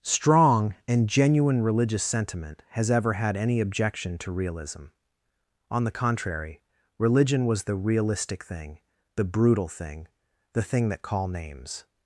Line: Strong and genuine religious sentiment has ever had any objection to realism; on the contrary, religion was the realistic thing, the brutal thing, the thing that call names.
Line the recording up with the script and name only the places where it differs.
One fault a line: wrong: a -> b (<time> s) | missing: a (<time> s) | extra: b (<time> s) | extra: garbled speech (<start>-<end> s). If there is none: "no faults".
no faults